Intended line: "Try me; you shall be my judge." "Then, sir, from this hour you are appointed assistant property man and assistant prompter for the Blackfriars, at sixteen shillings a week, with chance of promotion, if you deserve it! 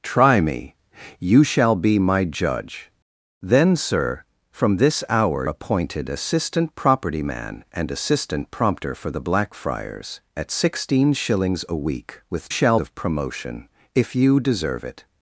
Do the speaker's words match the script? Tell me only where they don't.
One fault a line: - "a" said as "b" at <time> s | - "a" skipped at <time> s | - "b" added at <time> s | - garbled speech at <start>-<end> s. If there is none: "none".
- "you are" skipped at 5.5 s
- "chance" said as "shall" at 12.5 s